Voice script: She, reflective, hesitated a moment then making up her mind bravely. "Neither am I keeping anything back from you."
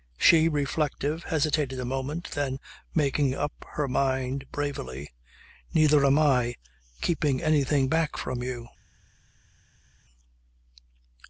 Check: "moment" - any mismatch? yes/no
no